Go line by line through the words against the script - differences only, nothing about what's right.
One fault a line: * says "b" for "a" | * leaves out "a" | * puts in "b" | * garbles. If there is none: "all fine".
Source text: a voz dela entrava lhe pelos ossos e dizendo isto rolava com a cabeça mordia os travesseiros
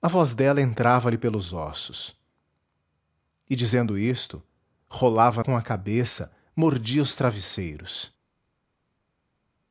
all fine